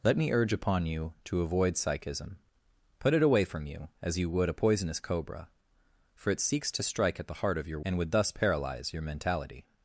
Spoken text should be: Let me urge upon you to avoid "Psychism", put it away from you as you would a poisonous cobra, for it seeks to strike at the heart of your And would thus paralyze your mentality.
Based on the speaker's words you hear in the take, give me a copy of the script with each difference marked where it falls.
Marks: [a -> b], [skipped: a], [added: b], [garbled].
Let me urge upon you to avoid "Psychism", put it away from you as you would a poisonous cobra, for it seeks to strike at the heart of your And would thus paralyze your mentality.